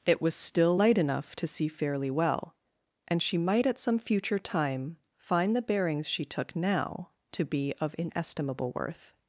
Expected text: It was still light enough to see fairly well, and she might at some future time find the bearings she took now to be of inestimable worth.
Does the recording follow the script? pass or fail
pass